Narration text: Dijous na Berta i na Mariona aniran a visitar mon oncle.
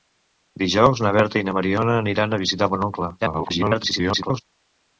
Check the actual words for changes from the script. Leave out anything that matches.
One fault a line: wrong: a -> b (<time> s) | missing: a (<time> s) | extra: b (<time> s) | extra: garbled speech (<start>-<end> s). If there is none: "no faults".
extra: garbled speech (3.2-4.4 s)